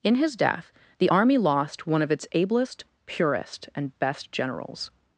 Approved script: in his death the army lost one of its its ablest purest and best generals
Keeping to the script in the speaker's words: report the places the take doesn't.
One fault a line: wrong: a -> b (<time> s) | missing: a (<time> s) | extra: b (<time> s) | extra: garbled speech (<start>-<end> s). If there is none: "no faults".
missing: its (2.2 s)